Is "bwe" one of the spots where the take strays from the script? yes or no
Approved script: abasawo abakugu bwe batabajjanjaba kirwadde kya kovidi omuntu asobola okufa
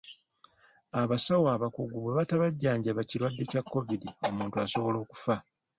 no